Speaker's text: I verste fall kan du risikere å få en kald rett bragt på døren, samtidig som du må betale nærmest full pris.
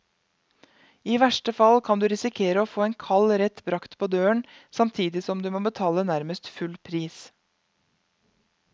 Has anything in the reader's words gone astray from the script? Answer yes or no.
no